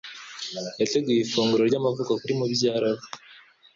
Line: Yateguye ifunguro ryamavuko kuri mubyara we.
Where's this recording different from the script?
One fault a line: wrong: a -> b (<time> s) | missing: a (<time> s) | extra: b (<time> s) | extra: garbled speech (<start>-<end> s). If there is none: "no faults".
no faults